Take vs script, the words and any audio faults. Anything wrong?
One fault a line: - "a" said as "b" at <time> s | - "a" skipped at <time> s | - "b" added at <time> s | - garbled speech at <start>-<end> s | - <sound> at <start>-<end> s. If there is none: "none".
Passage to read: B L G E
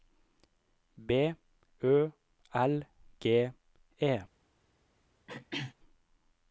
- "Ø" added at 1.8 s
- throat clearing at 5.3-5.7 s